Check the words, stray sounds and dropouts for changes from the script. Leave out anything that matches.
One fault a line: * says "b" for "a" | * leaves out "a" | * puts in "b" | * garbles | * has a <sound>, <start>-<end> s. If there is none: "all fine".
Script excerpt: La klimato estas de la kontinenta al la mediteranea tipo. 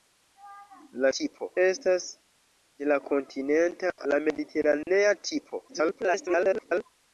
* says "tipo" for "klimato"
* leaves out "al"
* has a dropout, 4.8-4.9 s
* garbles